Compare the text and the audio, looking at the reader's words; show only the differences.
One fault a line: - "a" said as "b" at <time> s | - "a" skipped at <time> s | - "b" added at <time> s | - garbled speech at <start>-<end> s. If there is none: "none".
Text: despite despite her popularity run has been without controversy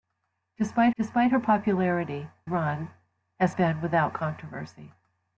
none